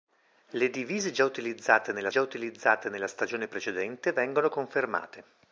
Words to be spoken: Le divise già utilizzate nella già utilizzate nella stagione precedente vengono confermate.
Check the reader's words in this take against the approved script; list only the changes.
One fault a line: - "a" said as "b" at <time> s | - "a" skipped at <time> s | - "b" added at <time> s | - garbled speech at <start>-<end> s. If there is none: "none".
none